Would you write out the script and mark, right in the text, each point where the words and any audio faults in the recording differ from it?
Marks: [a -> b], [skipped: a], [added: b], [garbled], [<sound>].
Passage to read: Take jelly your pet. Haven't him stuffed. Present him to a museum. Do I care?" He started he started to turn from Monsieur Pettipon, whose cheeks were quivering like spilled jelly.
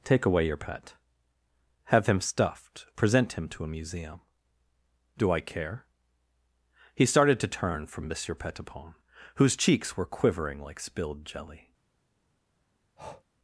Take [jelly -> away] your pet. [Haven't -> Have] him stuffed. Present him to a museum. Do I care?" He started [skipped: he started] to turn from Monsieur Pettipon, whose cheeks were quivering like spilled jelly. [breath]